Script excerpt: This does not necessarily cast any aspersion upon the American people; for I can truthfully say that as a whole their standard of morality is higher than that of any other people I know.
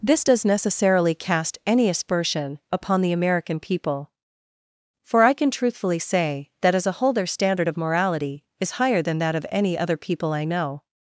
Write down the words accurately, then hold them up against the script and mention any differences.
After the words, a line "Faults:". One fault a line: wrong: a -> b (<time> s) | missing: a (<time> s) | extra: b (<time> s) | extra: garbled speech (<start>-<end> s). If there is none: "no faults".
This does necessarily cast any aspersion upon the American people; for I can truthfully say that as a whole their standard of morality is higher than that of any other people I know.
Faults:
missing: not (0.4 s)